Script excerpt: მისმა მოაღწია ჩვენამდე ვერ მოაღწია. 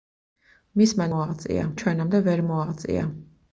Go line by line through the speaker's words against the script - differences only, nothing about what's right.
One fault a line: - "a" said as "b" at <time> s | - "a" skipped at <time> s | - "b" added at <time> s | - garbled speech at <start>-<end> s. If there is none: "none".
none